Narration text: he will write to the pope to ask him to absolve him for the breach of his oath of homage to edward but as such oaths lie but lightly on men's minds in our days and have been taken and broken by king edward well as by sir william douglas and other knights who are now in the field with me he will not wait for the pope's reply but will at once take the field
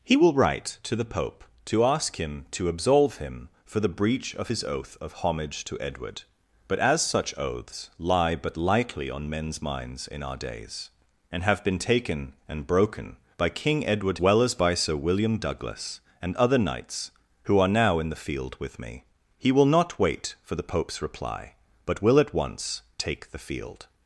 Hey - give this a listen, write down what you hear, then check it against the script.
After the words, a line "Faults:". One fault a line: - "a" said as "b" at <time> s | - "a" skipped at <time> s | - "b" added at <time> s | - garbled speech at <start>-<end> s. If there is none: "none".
he will write to the pope to ask him to absolve him for the breach of his oath of homage to edward but as such oaths lie but lightly on men's minds in our days and have been taken and broken by king edward well as by sir william douglas and other knights who are now in the field with me he will not wait for the pope's reply but will at once take the field
Faults:
none